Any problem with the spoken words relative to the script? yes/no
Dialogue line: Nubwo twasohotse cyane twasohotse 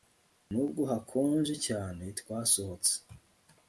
yes